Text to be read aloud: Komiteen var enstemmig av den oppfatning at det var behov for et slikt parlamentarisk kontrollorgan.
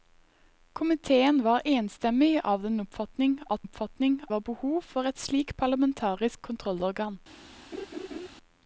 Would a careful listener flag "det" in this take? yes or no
yes